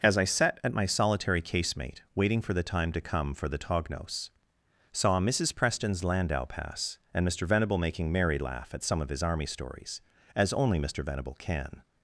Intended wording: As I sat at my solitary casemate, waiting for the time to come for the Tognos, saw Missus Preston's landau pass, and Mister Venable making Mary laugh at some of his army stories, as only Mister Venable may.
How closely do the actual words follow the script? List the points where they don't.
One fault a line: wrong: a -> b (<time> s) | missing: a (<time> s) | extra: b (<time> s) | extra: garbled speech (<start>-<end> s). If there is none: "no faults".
wrong: may -> can (11.4 s)